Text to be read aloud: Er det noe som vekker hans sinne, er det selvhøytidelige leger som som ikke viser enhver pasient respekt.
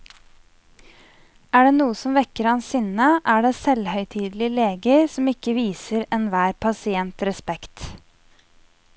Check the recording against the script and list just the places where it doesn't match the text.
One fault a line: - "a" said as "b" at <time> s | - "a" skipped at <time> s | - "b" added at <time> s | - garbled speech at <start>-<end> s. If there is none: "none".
- "som" skipped at 5.3 s